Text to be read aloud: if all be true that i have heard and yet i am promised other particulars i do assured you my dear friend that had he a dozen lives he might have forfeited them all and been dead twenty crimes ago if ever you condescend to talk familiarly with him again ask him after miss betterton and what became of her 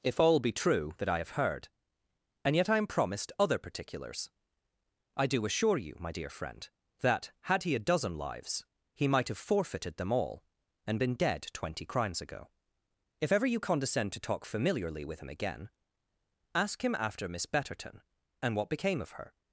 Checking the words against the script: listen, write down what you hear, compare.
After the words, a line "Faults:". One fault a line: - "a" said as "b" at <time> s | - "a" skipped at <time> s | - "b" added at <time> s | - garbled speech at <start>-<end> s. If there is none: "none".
if all be true that i have heard and yet i am promised other particulars i do assure you my dear friend that had he a dozen lives he might have forfeited them all and been dead twenty crimes ago if ever you condescend to talk familiarly with him again ask him after miss betterton and what became of her
Faults:
- "assured" said as "assure" at 5.5 s